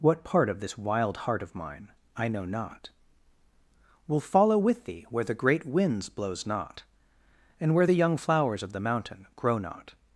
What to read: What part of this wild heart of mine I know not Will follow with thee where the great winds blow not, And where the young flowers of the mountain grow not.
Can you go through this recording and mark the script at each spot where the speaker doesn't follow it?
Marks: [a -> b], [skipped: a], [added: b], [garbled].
What part of this wild heart of mine I know not Will follow with thee where the great winds [blow -> blows] not, And where the young flowers of the mountain grow not.